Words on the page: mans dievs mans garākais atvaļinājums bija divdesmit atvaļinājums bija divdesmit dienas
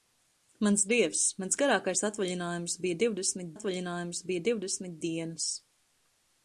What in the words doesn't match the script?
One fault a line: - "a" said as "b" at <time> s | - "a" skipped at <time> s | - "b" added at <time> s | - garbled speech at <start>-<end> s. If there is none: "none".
none